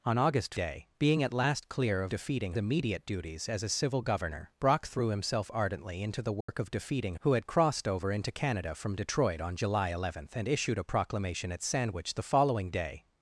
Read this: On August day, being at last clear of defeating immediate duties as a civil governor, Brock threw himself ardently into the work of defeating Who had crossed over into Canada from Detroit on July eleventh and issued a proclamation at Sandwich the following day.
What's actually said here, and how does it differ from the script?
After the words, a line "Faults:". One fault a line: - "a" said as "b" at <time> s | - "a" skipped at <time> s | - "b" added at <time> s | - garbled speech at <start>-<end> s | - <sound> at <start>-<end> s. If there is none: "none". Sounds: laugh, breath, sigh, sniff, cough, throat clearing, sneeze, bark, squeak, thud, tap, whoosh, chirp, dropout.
On August day, being at last clear of defeating immediate duties as a civil governor, Brock threw himself ardently into the work of defeating Who had crossed over into Canada from Detroit on July eleventh and issued a proclamation at Sandwich the following day.
Faults:
- dropout at 6.4-6.5 s